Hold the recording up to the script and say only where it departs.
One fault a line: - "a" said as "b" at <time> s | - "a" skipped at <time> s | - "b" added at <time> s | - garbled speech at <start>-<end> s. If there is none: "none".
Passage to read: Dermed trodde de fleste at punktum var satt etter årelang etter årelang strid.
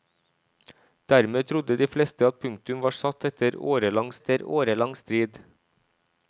none